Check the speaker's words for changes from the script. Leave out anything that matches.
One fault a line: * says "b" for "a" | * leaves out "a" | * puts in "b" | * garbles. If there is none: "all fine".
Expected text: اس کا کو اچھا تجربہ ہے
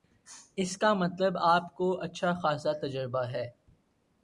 * puts in "مطلب آپ"
* puts in "خاصا"